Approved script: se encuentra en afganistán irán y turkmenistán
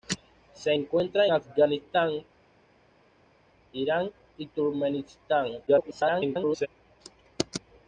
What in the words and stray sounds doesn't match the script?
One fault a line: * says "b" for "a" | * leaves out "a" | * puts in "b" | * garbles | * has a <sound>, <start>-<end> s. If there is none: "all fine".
* leaves out "en"
* garbles